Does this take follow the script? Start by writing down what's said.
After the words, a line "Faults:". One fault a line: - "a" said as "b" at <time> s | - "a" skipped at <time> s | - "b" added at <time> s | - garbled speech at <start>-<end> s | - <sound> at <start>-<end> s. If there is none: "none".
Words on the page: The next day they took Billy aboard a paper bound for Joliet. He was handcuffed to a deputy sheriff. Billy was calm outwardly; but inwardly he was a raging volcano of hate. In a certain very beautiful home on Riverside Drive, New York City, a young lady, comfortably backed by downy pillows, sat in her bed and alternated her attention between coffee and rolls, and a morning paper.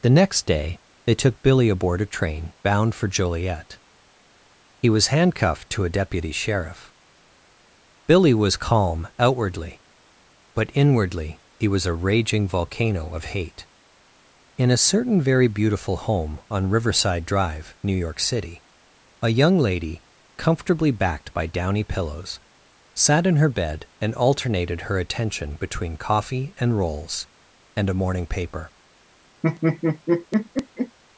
The next day they took Billy aboard a train bound for Joliet. He was handcuffed to a deputy sheriff. Billy was calm outwardly; but inwardly he was a raging volcano of hate. In a certain very beautiful home on Riverside Drive, New York City, a young lady, comfortably backed by downy pillows, sat in her bed and alternated her attention between coffee and rolls, and a morning paper.
Faults:
- "paper" said as "train" at 2.0 s
- laugh at 29.4-31.0 s